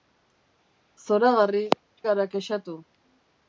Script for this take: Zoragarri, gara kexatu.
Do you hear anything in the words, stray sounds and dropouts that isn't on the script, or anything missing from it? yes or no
no